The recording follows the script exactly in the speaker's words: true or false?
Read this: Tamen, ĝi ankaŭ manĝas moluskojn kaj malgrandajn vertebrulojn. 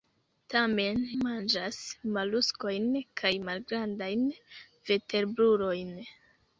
false